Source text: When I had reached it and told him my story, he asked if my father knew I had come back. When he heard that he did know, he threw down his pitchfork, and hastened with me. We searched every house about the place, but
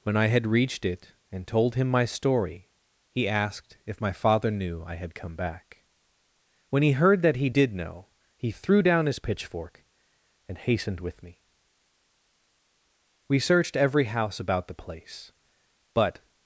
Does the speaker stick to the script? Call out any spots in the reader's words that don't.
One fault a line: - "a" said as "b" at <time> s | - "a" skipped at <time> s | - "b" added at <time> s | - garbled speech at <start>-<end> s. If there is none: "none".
none